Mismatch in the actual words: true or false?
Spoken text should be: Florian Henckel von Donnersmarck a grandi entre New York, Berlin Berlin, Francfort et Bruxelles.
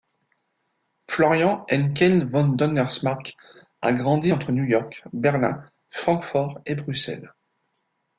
true